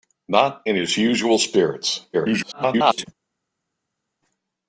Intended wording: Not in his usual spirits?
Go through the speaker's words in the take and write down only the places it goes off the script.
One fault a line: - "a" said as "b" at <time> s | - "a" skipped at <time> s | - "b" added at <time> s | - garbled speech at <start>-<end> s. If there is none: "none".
- garbled speech at 2.1-3.1 s